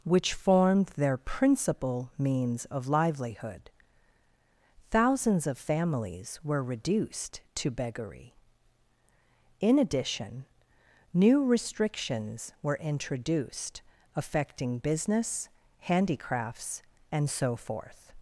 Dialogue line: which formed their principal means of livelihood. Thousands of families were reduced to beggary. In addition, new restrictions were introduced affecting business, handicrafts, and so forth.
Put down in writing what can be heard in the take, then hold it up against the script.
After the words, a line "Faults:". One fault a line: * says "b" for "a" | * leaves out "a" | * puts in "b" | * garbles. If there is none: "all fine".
which formed their principal means of livelihood. Thousands of families were reduced to beggary. In addition, new restrictions were introduced affecting business, handicrafts, and so forth.
Faults:
all fine